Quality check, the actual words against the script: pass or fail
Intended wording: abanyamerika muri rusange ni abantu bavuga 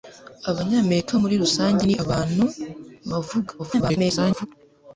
fail